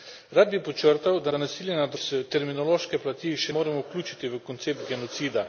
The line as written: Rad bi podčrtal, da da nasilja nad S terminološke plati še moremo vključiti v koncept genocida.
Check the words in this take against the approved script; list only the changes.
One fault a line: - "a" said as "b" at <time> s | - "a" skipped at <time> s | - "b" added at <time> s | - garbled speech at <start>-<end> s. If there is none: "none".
none